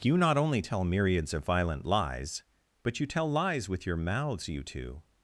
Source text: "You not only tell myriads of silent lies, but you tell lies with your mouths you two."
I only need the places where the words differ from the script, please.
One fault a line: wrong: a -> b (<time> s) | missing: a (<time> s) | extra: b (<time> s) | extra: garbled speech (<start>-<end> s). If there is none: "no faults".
wrong: silent -> violent (1.4 s)